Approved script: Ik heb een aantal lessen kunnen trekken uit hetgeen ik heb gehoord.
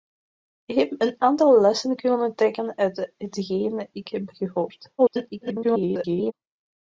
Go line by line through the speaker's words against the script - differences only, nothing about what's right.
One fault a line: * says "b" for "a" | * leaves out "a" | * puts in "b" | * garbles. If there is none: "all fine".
* garbles